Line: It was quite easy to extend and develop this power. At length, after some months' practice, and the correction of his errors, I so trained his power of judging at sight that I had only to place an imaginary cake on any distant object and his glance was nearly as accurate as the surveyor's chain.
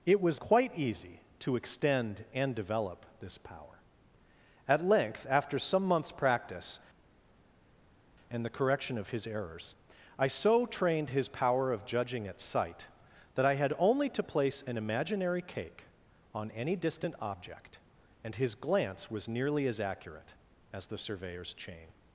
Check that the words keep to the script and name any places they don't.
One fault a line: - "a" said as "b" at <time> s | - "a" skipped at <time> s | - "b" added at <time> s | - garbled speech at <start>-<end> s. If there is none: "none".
none